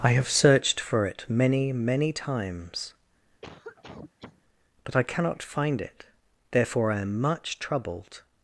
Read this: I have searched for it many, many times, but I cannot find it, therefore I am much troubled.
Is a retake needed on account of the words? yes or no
no